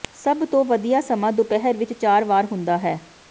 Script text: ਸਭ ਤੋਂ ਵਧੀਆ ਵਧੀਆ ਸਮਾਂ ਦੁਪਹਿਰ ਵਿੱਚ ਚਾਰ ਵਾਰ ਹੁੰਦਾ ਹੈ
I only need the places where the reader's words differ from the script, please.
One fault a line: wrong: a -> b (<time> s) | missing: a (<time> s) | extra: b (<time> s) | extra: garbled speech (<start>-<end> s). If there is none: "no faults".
missing: ਵਧੀਆ (1.0 s)